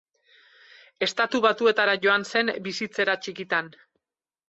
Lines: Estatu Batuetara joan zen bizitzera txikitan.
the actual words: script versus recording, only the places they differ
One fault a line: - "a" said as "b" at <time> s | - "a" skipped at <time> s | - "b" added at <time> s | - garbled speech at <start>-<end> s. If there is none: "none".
none